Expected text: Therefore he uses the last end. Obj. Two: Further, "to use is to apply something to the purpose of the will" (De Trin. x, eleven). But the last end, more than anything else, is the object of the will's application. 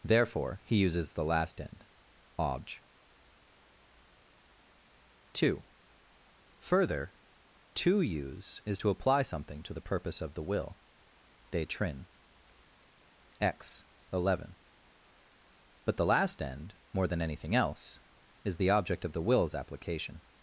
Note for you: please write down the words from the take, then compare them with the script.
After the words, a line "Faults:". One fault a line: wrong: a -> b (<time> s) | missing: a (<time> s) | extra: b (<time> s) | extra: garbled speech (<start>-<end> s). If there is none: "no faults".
Therefore he uses the last end. Obj. Two: Further, "to use is to apply something to the purpose of the will" (De Trin. x, eleven). But the last end, more than anything else, is the object of the will's application.
Faults:
no faults